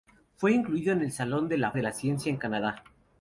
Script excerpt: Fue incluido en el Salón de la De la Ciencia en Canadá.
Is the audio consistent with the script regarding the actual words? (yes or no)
yes